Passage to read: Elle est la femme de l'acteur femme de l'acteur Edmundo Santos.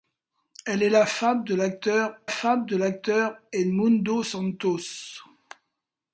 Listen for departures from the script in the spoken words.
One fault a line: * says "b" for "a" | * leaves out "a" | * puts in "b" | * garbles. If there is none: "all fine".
all fine